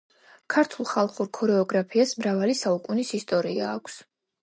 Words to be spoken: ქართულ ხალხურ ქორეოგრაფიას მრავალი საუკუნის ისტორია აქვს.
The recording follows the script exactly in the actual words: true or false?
true